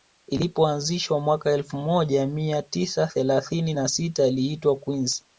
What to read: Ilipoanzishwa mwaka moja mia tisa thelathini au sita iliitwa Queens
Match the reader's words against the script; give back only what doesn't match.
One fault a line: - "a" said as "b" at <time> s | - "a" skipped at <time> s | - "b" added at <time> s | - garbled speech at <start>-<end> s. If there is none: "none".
- "elfu" added at 1.5 s
- "au" said as "na" at 3.7 s